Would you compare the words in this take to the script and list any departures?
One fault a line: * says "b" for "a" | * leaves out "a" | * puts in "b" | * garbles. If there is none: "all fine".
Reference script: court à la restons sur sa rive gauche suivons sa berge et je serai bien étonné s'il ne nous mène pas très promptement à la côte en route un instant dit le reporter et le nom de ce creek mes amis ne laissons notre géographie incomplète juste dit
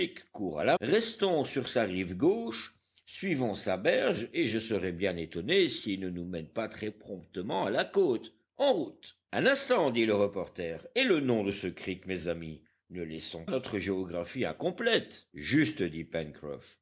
all fine